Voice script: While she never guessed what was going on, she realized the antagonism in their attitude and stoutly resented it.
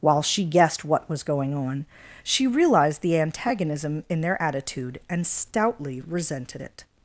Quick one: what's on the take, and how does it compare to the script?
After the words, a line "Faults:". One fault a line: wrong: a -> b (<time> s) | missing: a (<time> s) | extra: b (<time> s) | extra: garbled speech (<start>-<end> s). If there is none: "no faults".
While she guessed what was going on, she realized the antagonism in their attitude and stoutly resented it.
Faults:
missing: never (0.5 s)